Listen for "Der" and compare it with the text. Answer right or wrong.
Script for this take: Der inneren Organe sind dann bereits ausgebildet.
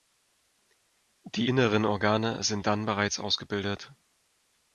wrong